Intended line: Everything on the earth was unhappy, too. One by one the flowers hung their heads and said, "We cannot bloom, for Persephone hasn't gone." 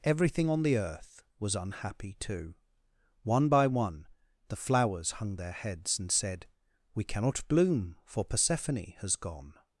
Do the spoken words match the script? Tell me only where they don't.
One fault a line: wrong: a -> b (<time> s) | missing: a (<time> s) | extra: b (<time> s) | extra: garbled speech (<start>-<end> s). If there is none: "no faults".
wrong: hasn't -> has (9.0 s)